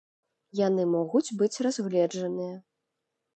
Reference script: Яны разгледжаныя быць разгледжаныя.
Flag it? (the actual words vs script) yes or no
yes